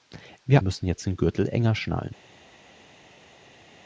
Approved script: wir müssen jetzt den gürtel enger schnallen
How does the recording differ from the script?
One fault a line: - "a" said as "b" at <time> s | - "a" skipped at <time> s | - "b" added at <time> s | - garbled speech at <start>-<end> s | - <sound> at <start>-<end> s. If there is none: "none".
none